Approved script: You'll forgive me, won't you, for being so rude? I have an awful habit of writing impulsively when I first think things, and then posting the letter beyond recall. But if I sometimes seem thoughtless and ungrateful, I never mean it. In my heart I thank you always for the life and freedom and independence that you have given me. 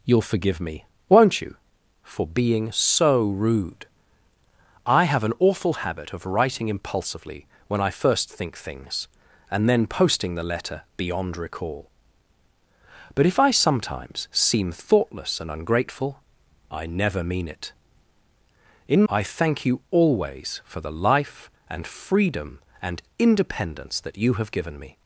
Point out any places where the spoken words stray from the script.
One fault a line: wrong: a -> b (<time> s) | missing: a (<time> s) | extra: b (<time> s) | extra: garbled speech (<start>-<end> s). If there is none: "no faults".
missing: my heart (19.0 s)